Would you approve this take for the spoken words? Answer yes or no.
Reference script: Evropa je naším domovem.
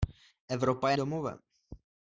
no